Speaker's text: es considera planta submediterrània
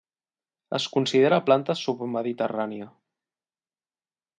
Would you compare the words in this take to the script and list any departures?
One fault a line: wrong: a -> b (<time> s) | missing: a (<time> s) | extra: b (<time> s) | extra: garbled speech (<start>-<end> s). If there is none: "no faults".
no faults